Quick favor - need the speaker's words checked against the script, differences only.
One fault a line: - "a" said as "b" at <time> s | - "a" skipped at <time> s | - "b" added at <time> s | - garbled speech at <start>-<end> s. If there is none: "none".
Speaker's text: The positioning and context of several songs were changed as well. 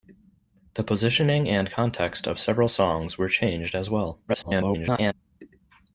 - garbled speech at 4.3-5.1 s